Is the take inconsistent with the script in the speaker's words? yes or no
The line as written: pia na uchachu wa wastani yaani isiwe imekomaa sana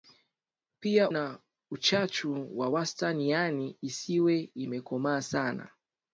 no